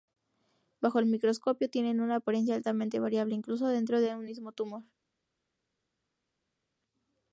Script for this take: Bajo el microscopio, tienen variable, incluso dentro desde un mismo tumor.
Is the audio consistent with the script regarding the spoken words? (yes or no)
no